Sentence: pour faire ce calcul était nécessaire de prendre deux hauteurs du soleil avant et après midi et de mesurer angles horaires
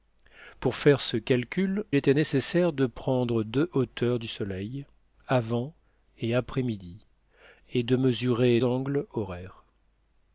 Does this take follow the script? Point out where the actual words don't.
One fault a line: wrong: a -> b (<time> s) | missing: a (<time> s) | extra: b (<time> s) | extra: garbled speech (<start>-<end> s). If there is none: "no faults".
no faults